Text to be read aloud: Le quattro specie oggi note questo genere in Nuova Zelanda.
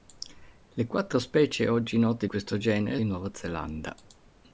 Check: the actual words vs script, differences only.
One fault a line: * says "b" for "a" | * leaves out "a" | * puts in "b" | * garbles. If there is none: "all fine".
all fine